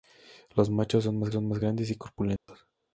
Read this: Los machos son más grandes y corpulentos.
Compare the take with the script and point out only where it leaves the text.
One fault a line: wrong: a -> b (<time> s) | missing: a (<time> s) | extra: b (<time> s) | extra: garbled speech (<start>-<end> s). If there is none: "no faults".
extra: son más (1.3 s)